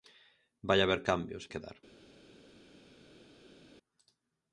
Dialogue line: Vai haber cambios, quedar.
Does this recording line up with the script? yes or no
yes